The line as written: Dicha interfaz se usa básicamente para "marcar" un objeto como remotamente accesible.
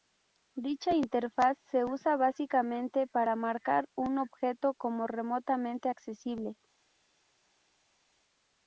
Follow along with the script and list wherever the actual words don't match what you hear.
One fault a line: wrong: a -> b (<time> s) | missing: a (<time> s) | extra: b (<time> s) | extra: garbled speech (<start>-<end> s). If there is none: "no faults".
no faults